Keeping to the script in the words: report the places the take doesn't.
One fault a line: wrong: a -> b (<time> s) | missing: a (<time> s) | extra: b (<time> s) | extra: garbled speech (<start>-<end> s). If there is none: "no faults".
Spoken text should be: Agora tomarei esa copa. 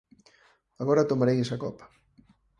no faults